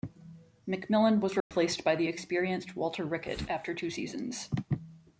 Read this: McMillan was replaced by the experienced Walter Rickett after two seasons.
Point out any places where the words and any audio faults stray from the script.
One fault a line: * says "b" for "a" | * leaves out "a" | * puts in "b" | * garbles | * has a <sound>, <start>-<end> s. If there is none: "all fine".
* has a dropout, 1.4-1.5 s